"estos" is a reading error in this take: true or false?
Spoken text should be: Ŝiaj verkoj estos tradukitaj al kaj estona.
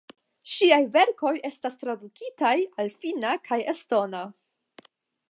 true